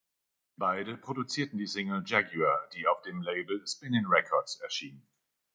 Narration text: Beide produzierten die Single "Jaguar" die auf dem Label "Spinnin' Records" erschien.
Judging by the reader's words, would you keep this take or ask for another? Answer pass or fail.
pass